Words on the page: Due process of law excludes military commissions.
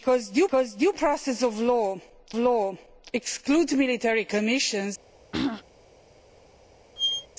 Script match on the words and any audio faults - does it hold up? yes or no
no